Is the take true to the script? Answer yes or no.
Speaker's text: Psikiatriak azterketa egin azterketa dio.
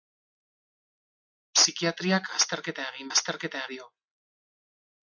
yes